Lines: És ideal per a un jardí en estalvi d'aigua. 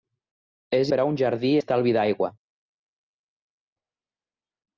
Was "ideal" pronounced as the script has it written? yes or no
no